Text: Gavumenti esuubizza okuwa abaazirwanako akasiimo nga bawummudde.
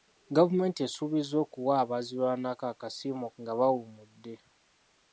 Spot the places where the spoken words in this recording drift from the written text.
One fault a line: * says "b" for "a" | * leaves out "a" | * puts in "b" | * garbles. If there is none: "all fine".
all fine